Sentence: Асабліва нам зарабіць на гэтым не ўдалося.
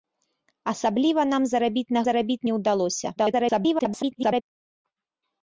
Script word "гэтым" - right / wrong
wrong